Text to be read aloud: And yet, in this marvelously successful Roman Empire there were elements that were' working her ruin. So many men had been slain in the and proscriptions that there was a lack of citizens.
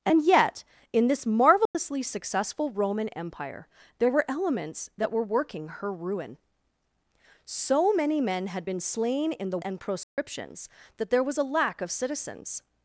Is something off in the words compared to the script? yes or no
no